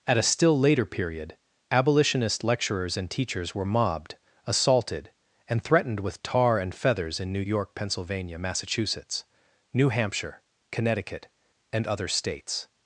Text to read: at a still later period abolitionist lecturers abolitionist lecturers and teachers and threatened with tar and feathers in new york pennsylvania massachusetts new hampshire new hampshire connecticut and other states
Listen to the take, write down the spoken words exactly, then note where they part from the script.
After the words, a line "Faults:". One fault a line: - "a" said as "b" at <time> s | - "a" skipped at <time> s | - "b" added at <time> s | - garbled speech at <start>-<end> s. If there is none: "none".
at a still later period abolitionist lecturers and teachers were mobbed assaulted and threatened with tar and feathers in new york pennsylvania massachusetts new hampshire connecticut and other states
Faults:
- "abolitionist lecturers and teachers" said as "and teachers were mobbed assaulted" at 3.0 s
- "new hampshire" skipped at 10.4 s